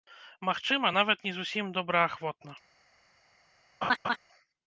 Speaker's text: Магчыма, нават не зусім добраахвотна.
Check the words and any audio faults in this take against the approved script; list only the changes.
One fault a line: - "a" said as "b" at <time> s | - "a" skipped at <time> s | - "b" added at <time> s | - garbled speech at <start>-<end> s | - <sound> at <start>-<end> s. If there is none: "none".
- laugh at 3.8-4.2 s